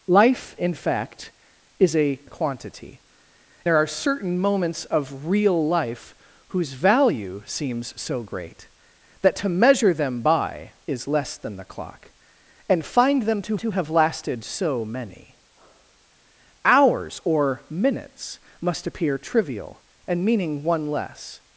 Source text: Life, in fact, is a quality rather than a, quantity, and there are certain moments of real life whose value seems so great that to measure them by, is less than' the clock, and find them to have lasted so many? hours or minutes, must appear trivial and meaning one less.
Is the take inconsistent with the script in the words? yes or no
yes